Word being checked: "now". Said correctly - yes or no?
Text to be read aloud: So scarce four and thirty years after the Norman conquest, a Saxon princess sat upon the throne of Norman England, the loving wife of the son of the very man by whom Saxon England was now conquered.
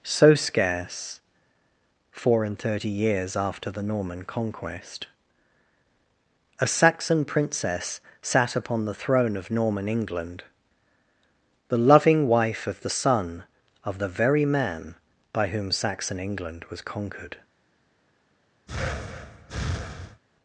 no